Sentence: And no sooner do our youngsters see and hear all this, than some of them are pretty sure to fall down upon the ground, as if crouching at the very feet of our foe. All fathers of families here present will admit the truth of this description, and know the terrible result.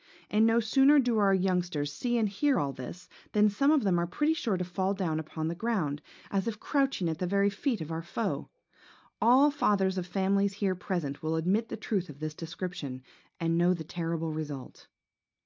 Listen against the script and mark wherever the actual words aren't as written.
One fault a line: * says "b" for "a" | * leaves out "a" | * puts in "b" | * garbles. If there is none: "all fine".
all fine